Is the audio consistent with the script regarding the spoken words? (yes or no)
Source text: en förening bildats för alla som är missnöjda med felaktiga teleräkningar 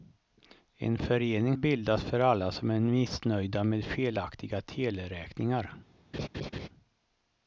yes